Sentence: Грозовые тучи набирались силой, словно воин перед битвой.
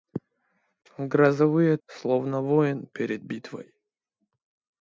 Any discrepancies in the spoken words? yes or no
yes